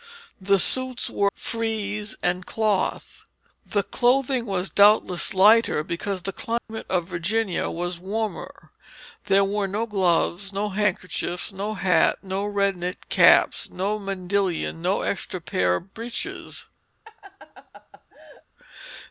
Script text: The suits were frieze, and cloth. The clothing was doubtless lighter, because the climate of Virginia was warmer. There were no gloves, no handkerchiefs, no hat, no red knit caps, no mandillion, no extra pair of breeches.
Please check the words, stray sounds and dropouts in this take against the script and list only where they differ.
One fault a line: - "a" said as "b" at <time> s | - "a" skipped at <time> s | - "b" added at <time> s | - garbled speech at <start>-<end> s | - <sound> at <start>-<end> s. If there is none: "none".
- dropout at 6.6-6.7 s
- laugh at 17.0-18.4 s